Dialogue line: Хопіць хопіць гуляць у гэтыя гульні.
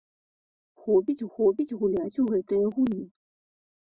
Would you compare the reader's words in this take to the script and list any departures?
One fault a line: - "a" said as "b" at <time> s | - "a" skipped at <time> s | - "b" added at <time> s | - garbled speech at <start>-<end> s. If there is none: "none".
none